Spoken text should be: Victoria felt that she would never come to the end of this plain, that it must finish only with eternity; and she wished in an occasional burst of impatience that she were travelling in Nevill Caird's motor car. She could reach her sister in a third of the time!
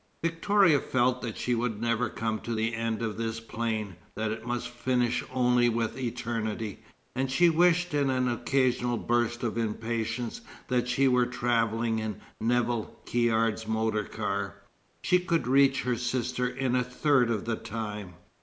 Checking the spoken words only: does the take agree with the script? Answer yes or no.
yes